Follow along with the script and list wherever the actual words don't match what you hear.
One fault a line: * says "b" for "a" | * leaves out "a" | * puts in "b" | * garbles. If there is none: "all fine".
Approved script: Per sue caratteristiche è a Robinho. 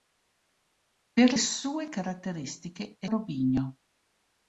all fine